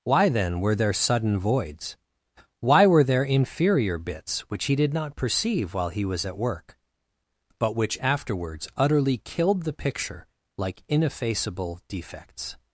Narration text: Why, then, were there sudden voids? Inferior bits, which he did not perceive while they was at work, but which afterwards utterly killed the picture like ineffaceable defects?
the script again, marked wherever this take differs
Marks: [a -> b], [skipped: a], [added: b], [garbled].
Why, then, were there sudden voids? [added: Why were there] Inferior bits, which he did not perceive while [they -> he] was at work, but which afterwards utterly killed the picture like ineffaceable defects?